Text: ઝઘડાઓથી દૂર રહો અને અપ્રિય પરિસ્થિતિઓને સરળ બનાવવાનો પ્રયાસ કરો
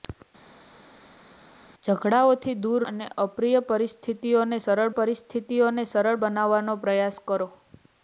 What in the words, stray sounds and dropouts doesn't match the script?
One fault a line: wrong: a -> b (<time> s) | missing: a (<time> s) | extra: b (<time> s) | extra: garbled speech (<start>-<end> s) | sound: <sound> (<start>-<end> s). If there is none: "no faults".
missing: રહો (2.9 s)
extra: પરિસ્થિતિઓને સરળ (5.0 s)